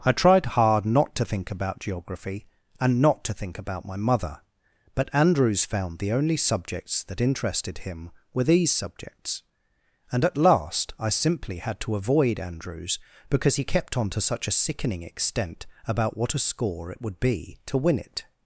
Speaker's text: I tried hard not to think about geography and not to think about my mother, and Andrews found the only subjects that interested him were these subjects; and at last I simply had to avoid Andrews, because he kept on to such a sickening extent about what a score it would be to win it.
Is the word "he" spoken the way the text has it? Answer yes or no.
yes